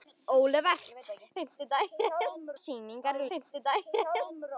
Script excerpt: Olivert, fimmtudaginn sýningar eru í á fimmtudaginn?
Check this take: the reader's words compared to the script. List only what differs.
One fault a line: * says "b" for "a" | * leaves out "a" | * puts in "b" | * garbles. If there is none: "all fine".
all fine